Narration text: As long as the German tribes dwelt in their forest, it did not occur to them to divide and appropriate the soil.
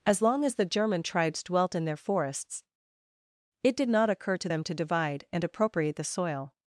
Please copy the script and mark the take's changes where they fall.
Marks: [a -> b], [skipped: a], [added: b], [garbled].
As long as the German tribes dwelt in their [forest, -> forests] it did not occur to them to divide and appropriate the soil.